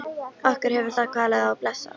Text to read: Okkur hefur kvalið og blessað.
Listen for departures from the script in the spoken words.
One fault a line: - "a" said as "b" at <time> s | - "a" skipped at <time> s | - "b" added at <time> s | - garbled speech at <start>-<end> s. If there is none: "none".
- "það" added at 0.9 s